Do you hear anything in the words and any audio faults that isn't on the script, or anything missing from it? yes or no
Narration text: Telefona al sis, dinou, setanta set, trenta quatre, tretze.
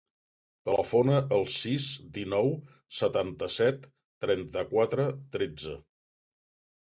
no